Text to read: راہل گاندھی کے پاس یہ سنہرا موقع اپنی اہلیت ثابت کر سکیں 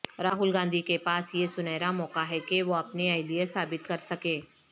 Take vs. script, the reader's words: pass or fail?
fail